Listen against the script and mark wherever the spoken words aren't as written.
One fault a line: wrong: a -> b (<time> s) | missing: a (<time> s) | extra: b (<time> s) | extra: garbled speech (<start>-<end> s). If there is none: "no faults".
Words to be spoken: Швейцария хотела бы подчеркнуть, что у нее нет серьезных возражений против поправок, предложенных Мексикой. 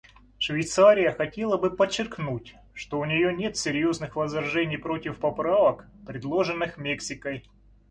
no faults